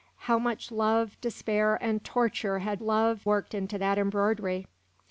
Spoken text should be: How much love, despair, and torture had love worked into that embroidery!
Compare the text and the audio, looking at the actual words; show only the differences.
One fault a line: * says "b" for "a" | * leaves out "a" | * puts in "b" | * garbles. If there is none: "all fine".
all fine